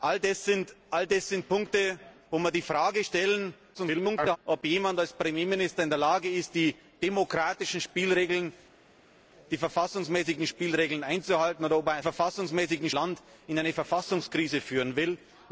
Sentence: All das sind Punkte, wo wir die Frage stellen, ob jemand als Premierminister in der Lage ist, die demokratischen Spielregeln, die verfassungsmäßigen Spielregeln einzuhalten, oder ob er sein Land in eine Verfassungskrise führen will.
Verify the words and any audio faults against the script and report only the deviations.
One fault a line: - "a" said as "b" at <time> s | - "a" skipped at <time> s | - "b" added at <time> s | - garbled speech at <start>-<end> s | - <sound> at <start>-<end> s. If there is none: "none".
- garbled speech at 3.7-4.4 s
- "sein" said as "verfassungsmäßigen" at 12.0 s